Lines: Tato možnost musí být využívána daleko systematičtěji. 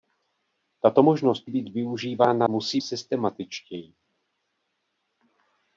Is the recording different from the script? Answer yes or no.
yes